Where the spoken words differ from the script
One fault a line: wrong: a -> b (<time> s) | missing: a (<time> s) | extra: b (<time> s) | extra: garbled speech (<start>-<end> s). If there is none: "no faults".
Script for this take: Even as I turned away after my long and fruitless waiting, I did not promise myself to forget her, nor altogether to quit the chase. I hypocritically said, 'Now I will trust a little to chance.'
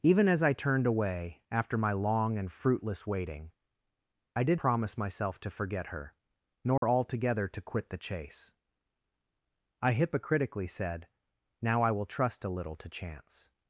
missing: not (4.6 s)